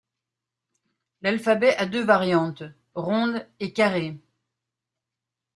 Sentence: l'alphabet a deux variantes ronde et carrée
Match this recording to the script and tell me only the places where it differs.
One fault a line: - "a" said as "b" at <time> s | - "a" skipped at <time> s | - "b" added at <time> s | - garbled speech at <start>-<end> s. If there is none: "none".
none